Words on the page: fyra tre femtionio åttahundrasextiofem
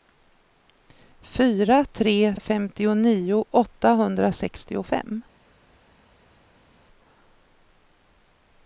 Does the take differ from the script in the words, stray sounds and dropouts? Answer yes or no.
no